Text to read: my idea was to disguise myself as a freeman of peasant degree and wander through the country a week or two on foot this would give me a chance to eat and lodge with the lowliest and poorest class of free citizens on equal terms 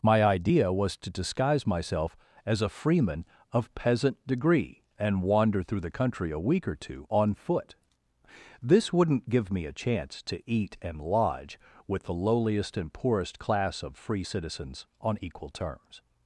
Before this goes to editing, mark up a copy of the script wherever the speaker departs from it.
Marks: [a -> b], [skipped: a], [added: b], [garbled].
my idea was to disguise myself as a freeman of peasant degree and wander through the country a week or two on foot this [would -> wouldn't] give me a chance to eat and lodge with the lowliest and poorest class of free citizens on equal terms